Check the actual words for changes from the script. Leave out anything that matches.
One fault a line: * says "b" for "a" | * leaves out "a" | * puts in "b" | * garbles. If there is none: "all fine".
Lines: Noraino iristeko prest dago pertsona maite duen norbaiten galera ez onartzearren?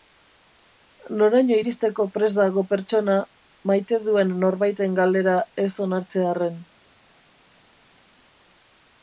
all fine